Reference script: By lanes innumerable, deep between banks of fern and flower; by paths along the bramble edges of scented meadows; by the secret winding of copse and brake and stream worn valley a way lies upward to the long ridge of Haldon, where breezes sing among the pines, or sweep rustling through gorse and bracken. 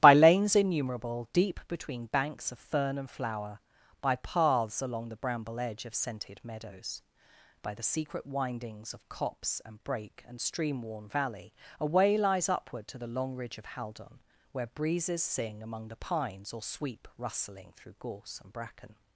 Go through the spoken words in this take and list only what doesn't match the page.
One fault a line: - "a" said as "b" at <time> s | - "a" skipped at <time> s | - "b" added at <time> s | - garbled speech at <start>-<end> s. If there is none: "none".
- "edges" said as "edge" at 5.6 s
- "winding" said as "windings" at 8.2 s